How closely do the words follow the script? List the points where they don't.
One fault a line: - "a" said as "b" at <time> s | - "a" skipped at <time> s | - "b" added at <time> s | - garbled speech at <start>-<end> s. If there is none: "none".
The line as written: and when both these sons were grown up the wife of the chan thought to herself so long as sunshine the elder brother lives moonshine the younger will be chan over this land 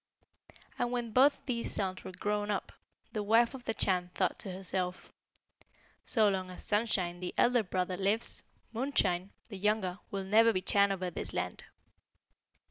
- "never" added at 10.2 s